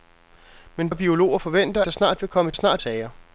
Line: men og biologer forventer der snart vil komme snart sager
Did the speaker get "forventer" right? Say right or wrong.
right